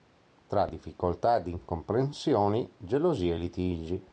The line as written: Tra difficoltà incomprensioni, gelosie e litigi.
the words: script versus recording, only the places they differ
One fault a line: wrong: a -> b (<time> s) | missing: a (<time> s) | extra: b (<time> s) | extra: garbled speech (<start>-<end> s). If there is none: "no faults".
extra: ed (1.4 s)